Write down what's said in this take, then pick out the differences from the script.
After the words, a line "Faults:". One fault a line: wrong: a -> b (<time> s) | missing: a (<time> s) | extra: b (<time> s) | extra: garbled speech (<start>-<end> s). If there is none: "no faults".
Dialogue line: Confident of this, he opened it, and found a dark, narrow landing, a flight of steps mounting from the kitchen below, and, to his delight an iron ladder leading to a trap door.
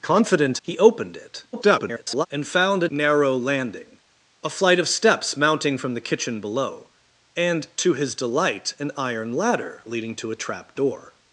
Confident he opened it, [garbled] and found a narrow landing, a flight of steps mounting from the kitchen below, and, to his delight an iron ladder leading to a trap door.
Faults:
missing: of this (0.6 s)
extra: garbled speech (1.5-2.3 s)
missing: dark (2.9 s)